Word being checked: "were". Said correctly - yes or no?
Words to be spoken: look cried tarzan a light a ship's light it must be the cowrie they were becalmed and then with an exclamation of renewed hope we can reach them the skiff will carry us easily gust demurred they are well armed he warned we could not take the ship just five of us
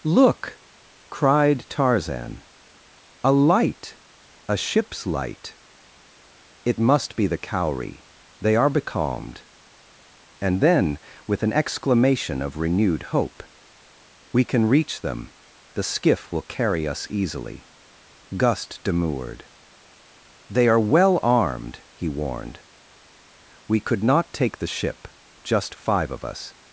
no